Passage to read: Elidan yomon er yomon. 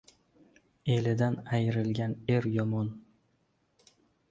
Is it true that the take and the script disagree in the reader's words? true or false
true